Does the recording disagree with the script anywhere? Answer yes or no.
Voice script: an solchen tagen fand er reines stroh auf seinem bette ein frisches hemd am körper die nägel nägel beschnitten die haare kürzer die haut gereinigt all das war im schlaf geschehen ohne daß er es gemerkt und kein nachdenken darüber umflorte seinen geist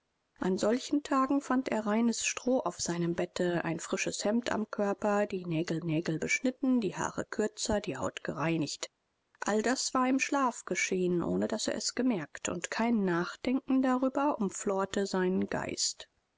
no